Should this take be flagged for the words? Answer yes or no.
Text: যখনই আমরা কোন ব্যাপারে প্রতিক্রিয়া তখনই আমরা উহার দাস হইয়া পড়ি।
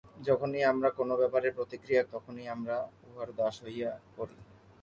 no